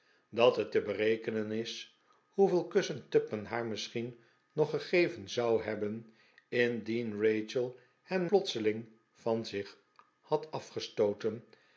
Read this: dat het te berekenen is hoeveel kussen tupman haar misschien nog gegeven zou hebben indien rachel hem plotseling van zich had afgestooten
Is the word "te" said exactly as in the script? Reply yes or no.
yes